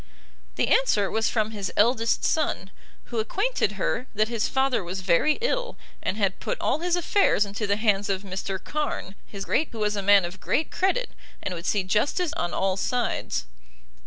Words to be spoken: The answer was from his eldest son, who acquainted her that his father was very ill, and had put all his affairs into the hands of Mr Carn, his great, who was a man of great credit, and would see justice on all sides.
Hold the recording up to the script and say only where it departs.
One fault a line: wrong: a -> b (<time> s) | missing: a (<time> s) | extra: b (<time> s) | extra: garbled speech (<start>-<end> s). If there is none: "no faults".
no faults